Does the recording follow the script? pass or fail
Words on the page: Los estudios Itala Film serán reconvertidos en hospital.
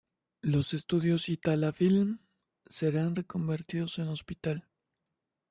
pass